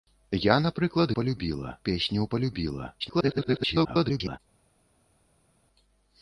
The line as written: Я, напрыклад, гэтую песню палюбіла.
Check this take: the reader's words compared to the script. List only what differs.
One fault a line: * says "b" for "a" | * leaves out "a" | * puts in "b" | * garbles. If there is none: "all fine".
* says "палюбіла" for "гэтую"
* garbles